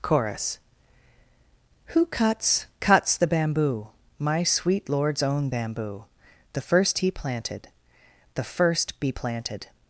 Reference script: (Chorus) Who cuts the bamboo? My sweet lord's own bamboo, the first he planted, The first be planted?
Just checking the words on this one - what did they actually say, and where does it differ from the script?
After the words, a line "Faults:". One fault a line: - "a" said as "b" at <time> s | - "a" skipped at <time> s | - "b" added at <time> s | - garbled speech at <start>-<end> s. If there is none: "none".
(Chorus) Who cuts cuts the bamboo? My sweet lord's own bamboo, the first he planted, The first be planted?
Faults:
- "cuts" added at 2.8 s